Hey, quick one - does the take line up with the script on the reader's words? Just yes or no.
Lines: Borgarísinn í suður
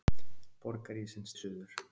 yes